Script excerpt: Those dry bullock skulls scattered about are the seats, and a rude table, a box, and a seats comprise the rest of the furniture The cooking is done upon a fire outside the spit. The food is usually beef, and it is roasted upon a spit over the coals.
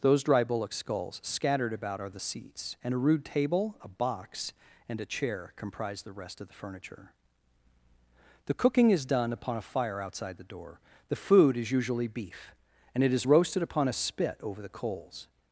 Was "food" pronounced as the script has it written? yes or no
yes